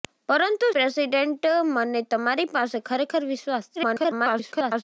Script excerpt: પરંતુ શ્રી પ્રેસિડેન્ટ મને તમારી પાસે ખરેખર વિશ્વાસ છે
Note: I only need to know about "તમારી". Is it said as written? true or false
true